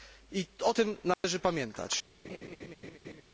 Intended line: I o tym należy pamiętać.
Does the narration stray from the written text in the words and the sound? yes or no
yes